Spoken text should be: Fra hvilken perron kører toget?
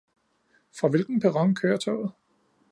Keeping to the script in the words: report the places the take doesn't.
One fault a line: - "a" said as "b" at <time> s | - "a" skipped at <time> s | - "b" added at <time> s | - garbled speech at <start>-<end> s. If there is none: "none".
none